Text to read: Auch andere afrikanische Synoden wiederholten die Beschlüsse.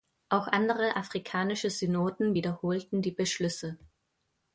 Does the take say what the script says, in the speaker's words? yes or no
yes